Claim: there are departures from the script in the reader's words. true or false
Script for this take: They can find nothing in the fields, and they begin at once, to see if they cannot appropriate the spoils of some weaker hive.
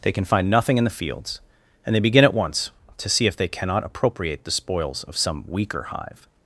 false